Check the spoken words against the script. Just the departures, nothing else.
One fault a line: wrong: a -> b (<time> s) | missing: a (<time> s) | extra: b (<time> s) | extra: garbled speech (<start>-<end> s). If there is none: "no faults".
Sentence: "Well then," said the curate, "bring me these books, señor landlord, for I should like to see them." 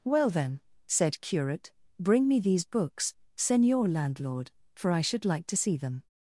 missing: the (1.2 s)